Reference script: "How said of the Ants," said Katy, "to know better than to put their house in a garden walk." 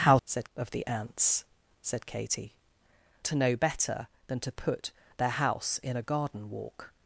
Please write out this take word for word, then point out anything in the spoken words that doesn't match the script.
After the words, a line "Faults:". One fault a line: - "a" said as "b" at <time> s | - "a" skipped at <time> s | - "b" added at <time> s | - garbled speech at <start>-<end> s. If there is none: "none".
"How said of the Ants," said Katy, "to know better than to put their house in a garden walk."
Faults:
none